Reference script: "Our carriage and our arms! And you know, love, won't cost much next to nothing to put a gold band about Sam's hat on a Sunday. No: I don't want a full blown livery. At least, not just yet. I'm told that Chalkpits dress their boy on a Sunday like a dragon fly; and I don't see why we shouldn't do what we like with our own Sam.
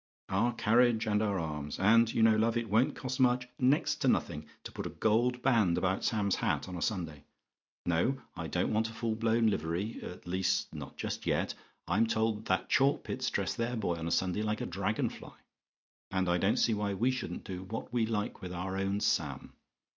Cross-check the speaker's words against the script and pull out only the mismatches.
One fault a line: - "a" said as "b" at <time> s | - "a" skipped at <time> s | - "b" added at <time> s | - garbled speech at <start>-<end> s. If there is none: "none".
- "it" added at 2.6 s